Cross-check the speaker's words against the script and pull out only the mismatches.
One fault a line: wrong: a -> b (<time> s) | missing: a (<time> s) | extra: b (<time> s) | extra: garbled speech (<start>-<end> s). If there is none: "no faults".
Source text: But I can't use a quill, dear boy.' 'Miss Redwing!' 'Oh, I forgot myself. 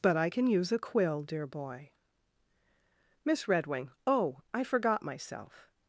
wrong: can't -> can (0.3 s)